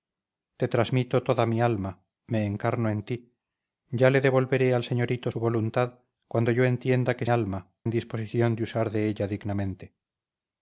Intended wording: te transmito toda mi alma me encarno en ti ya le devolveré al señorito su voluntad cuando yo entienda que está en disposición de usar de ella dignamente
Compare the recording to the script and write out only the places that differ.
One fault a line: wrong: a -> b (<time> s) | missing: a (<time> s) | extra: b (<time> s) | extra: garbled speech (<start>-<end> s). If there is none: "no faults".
wrong: está -> alma (7.3 s)